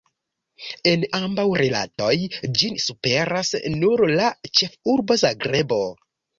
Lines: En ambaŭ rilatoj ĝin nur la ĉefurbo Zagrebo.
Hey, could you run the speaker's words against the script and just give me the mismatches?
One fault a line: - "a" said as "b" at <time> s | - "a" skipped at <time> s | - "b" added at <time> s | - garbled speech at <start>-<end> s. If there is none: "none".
- "superas" added at 2.9 s